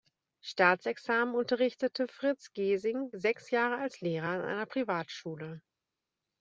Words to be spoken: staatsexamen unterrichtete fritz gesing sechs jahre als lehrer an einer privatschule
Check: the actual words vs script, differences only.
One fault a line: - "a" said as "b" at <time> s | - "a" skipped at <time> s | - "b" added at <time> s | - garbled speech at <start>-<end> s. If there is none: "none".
none